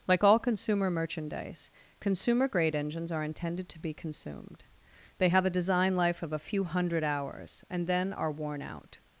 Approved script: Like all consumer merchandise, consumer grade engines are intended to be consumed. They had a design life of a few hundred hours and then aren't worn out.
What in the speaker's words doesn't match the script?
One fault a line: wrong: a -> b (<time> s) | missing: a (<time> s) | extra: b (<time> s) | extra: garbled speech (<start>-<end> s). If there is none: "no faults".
wrong: had -> have (5.3 s)
wrong: aren't -> are (8.1 s)